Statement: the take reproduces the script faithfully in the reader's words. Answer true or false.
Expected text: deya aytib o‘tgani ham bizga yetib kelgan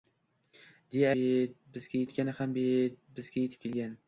false